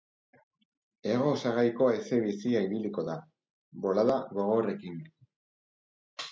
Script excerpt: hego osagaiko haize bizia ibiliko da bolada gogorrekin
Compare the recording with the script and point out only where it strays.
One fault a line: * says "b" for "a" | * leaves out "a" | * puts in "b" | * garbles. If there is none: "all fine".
all fine